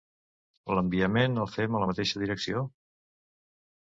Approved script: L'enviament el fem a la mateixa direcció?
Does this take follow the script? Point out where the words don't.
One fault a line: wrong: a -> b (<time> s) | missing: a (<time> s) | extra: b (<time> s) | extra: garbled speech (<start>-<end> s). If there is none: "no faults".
no faults